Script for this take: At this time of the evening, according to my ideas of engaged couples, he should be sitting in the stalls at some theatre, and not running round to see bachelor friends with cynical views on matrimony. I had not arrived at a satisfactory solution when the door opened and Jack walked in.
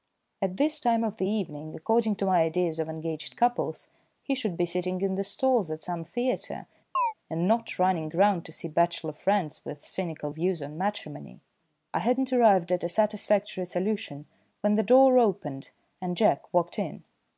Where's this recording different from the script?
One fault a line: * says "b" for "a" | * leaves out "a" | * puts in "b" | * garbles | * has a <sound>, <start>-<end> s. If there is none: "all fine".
* has a chirp, 6.9-7.1 s